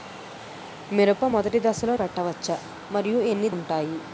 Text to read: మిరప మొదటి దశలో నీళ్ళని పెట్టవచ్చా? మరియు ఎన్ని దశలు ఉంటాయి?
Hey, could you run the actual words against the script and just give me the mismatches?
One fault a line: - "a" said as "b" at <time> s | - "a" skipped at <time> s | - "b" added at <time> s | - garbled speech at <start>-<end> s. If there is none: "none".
- "నీళ్ళని" skipped at 1.9 s
- "దశలు" skipped at 3.5 s